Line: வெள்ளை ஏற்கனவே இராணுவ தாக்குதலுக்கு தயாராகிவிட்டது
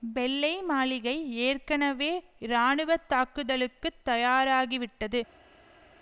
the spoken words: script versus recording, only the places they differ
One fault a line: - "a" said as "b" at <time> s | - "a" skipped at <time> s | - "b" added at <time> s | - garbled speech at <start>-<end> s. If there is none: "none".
- "மாளிகை" added at 0.6 s